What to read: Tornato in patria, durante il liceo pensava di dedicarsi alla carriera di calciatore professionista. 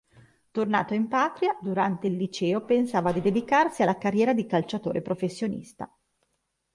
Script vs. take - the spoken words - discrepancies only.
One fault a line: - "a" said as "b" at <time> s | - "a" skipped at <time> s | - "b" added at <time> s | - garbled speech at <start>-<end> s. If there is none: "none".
none